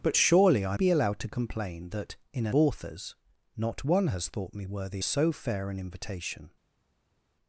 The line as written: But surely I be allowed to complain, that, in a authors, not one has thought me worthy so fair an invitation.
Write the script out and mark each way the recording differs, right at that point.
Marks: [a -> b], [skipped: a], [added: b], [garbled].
But surely I be allowed to complain, that, in a authors, not one has thought me worthy so fair an invitation.